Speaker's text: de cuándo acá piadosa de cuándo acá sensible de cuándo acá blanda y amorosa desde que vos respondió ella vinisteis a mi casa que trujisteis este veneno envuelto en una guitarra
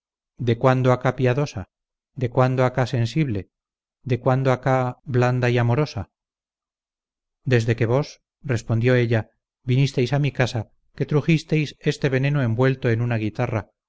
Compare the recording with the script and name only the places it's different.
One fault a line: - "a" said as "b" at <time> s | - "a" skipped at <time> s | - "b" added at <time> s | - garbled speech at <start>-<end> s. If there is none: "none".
none